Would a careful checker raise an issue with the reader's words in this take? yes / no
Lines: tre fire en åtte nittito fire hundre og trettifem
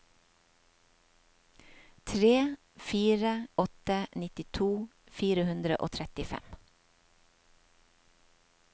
yes